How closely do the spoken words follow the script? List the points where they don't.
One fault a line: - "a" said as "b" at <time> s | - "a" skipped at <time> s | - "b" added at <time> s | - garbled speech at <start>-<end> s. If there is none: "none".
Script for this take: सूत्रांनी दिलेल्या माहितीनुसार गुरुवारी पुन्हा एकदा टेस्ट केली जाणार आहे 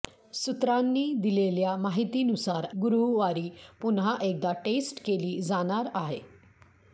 none